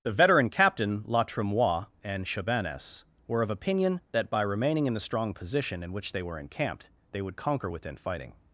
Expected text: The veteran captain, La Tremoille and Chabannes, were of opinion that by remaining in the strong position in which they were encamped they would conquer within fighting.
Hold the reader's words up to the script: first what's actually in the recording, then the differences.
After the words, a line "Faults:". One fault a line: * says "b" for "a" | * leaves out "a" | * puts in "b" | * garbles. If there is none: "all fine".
The veteran captain, La Tremoille and Chabannes, were of opinion that by remaining in the strong position in which they were encamped they would conquer within fighting.
Faults:
all fine